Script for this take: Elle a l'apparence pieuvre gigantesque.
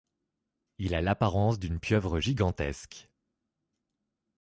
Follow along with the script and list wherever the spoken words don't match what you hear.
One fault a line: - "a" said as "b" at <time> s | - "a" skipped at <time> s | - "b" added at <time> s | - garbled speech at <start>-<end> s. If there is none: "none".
- "Elle" said as "Il" at 0.8 s
- "d'une" added at 1.6 s